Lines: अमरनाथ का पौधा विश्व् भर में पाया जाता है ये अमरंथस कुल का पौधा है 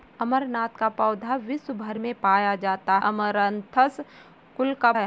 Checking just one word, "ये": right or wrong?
wrong